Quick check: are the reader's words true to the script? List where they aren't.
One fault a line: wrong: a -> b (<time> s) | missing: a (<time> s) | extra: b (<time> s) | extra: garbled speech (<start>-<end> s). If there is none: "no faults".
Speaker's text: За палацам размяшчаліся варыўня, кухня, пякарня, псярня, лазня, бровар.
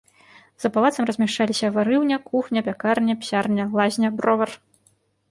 no faults